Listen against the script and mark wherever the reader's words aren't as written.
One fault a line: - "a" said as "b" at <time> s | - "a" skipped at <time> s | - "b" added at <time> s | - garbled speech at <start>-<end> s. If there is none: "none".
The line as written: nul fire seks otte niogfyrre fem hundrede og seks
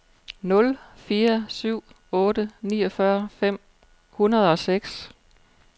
- "seks" said as "syv" at 1.5 s